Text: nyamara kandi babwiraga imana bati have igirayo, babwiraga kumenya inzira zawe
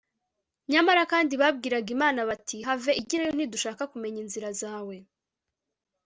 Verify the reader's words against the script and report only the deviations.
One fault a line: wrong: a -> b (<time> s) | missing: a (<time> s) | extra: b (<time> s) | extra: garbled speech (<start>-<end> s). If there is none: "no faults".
wrong: babwiraga -> ntidushaka (3.3 s)